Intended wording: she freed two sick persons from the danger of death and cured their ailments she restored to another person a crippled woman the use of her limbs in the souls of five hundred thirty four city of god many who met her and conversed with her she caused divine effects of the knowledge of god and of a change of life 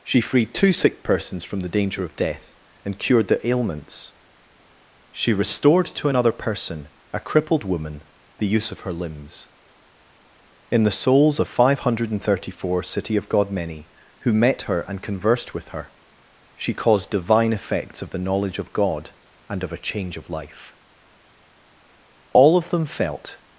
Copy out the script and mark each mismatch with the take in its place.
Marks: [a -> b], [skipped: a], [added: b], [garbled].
she freed two sick persons from the danger of death and cured their ailments she restored to another person a crippled woman the use of her limbs in the souls of five hundred thirty four city of god many who met her and conversed with her she caused divine effects of the knowledge of god and of a change of life [added: all of them felt]